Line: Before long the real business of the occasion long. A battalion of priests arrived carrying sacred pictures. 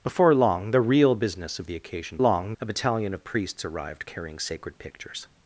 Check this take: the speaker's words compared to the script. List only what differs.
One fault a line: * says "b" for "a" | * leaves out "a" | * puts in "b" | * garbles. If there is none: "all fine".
all fine